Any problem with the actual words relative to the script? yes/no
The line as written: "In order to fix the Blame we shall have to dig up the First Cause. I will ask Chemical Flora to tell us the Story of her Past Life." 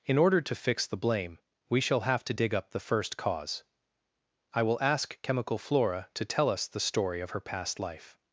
no